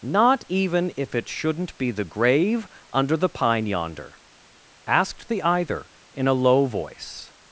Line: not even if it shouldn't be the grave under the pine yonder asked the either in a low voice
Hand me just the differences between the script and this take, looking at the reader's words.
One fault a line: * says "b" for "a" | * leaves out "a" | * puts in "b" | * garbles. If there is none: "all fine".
all fine